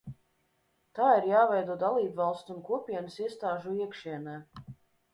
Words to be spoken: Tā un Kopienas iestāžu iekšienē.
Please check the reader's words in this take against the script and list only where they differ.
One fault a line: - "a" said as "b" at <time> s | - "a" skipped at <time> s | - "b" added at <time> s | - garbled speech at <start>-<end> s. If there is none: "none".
- "ir jāveido dalībvalstu" added at 1.2 s